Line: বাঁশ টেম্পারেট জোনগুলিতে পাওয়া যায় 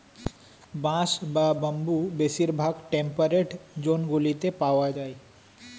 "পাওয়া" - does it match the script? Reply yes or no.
yes